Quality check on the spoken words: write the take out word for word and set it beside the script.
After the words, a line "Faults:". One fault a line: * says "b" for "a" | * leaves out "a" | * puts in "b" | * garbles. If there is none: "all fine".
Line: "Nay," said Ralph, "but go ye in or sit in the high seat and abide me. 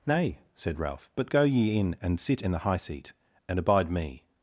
"Nay," said Ralph, "but go ye in and sit in the high seat and abide me.
Faults:
* says "and" for "or"